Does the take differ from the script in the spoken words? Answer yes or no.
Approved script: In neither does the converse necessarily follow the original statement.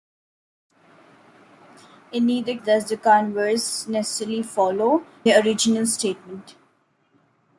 no